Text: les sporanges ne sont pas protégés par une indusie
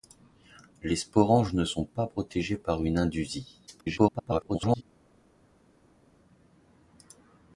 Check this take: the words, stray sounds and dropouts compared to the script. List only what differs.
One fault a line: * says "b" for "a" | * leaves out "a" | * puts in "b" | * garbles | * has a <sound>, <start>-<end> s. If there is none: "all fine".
* garbles